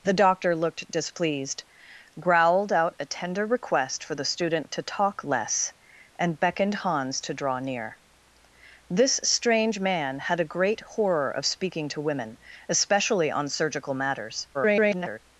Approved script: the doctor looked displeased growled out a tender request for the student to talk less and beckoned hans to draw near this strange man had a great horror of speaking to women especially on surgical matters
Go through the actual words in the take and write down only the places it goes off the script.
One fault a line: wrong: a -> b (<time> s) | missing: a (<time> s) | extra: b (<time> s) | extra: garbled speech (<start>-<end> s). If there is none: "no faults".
extra: garbled speech (14.5-15.2 s)